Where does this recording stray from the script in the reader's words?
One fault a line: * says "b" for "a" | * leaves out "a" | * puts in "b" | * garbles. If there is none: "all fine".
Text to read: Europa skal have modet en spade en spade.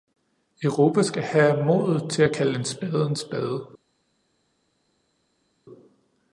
* puts in "til at kalde"